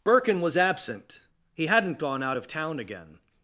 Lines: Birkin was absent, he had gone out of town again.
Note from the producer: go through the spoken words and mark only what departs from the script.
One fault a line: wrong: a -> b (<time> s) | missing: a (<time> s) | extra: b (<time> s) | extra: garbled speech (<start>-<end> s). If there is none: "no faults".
wrong: had -> hadn't (1.7 s)